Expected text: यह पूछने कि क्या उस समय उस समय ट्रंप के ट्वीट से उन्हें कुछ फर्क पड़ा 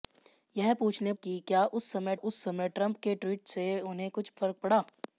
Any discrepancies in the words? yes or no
no